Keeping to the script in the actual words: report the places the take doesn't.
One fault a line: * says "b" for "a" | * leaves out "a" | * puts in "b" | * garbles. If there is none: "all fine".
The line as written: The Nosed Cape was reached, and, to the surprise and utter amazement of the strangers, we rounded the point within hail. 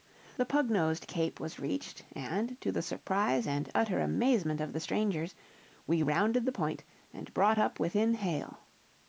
* puts in "Pug"
* puts in "and brought up"